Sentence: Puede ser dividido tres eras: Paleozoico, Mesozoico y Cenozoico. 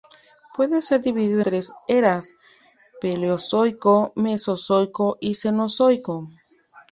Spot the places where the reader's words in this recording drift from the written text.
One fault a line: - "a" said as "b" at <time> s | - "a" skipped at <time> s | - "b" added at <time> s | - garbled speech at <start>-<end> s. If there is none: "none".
none